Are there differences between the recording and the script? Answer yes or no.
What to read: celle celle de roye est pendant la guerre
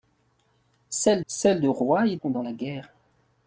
no